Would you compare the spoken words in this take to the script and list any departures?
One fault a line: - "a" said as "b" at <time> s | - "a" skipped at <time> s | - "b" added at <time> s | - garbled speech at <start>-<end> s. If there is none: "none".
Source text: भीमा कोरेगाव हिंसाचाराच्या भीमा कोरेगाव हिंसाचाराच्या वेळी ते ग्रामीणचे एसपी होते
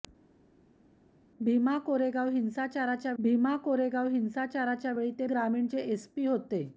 none